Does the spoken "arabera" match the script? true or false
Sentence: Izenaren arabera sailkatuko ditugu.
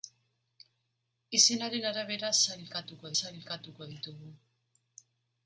true